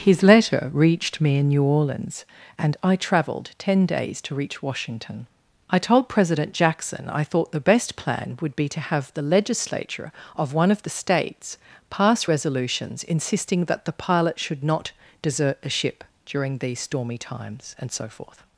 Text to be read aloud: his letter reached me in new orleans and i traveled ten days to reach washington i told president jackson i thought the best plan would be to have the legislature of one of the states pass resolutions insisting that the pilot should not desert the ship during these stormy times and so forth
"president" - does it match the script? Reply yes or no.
yes